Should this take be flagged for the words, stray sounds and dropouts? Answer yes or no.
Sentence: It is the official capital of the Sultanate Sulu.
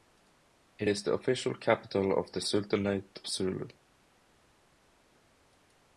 no